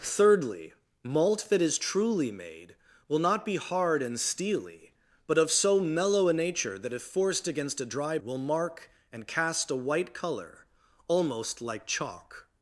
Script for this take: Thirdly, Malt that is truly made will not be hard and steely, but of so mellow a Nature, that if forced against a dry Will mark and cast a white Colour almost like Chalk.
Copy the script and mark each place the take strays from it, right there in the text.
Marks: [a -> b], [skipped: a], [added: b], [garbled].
Thirdly, Malt that is truly made will not be hard and steely, but of so mellow a Nature, that if forced against a dry Will mark and cast a white Colour almost like Chalk.